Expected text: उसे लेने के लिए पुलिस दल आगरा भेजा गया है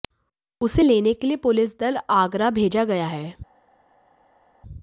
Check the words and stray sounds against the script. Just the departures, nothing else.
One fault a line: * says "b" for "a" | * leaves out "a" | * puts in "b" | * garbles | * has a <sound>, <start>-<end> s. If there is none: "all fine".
all fine